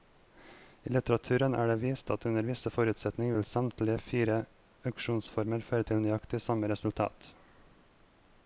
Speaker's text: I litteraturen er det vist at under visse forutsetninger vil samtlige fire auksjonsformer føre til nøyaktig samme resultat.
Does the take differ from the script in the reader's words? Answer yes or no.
no